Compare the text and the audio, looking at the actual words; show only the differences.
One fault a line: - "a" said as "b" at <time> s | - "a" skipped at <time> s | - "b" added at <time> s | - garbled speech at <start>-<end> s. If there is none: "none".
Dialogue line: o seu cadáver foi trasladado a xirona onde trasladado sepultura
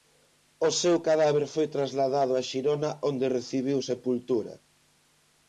- "trasladado" said as "recibiu" at 3.4 s